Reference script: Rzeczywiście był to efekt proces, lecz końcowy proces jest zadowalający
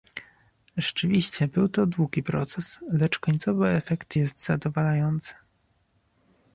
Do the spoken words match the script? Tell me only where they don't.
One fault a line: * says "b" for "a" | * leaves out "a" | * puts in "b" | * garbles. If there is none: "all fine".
* says "długi" for "efekt"
* says "efekt" for "proces"